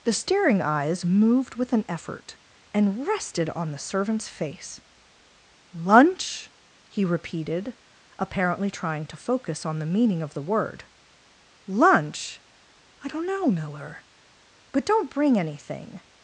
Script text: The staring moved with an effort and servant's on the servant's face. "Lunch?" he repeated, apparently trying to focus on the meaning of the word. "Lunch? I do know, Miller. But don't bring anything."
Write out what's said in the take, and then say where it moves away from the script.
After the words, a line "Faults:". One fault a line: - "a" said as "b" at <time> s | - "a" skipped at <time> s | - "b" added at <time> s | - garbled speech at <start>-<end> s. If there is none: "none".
The staring eyes moved with an effort and rested on the servant's face. "Lunch?" he repeated, apparently trying to focus on the meaning of the word. "Lunch? I don't know, Miller. But don't bring anything."
Faults:
- "eyes" added at 0.6 s
- "servant's" said as "rested" at 3.0 s
- "do" said as "don't" at 13.1 s